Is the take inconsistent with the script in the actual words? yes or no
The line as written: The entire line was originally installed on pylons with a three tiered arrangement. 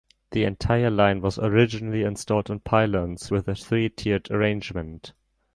no